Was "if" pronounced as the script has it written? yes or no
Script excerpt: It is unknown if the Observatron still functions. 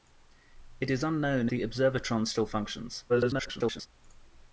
no